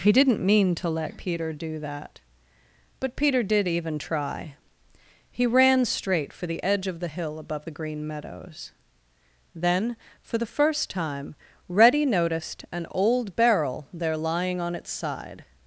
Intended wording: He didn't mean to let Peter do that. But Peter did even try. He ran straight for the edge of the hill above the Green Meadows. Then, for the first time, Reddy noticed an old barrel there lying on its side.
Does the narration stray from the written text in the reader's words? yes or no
no